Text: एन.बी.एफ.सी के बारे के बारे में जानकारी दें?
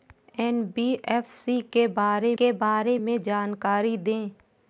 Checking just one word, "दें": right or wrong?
right